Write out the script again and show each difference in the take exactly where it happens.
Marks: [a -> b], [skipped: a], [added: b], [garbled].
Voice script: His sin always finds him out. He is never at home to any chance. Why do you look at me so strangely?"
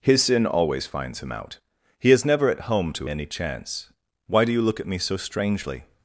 His sin always finds him out. He is never at home to any chance. Why do you look at me so strangely?"